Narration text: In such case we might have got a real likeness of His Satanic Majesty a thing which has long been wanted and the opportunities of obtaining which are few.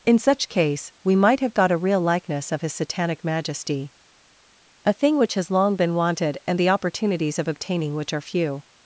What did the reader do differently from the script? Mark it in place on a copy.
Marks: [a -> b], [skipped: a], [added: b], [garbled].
In such case we might have got a real likeness of His Satanic Majesty a thing which has long been wanted and the opportunities of obtaining which are few.